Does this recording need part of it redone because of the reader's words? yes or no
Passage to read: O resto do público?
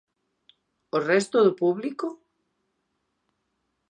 no